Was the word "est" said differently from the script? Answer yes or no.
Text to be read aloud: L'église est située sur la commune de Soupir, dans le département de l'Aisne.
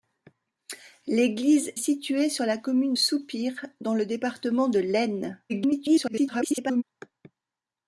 yes